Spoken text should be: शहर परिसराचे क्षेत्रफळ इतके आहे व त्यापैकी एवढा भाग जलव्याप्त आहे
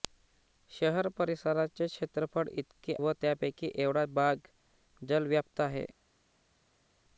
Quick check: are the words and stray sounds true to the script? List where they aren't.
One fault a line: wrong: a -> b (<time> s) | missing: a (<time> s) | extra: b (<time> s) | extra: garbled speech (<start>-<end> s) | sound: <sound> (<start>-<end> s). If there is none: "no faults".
missing: आहे (3.0 s)